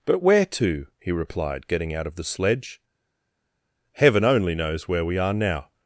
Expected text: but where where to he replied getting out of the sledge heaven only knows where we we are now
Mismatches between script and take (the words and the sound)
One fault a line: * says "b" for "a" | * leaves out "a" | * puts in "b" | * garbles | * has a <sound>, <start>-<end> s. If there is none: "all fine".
* leaves out "where"
* leaves out "we"